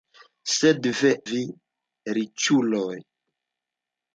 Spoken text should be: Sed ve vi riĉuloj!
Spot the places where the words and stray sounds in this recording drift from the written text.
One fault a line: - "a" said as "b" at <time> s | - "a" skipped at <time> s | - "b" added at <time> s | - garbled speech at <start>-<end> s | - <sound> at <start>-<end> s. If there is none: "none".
none